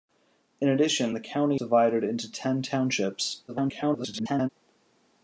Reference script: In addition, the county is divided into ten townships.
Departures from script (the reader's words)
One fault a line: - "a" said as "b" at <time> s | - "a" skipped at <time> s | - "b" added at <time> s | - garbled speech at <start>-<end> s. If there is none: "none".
- "is" skipped at 1.6 s
- garbled speech at 3.5-4.5 s